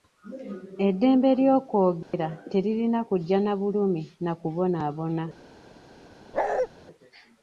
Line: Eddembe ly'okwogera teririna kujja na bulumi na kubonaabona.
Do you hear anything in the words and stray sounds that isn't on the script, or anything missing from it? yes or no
yes